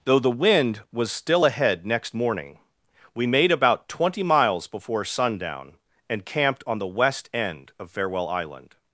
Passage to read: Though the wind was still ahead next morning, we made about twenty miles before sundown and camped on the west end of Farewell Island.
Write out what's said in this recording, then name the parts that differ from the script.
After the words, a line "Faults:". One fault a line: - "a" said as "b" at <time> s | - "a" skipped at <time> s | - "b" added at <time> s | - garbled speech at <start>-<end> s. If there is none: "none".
Though the wind was still ahead next morning, we made about twenty miles before sundown and camped on the west end of Farewell Island.
Faults:
none